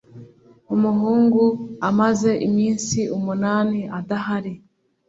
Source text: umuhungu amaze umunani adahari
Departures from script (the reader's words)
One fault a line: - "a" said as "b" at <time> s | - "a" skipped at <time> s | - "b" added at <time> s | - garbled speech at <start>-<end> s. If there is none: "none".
- "iminsi" added at 2.5 s